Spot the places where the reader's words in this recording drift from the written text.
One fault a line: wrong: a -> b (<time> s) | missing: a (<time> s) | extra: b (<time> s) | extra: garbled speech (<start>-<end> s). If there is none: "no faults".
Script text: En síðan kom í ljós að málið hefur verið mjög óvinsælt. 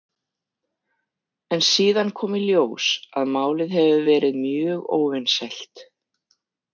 no faults